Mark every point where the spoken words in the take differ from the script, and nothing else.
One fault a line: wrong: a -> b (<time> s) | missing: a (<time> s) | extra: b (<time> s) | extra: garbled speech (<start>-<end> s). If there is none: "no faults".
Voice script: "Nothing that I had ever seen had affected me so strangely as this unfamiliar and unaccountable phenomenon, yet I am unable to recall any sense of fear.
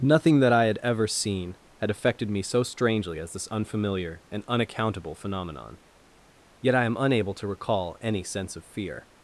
no faults